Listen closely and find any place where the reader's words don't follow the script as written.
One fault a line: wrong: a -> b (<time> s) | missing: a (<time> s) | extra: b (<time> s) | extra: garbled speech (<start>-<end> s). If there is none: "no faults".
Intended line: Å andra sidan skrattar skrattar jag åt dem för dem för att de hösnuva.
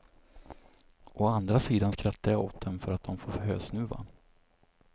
missing: skrattar (2.3 s)
missing: dem för (2.9 s)
extra: får (3.2 s)